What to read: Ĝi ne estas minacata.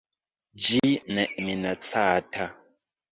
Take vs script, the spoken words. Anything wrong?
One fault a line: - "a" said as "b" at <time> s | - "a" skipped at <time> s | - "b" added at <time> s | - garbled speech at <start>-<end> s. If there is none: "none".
- "estas" skipped at 1.3 s